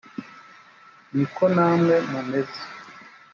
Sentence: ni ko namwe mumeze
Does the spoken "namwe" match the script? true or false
true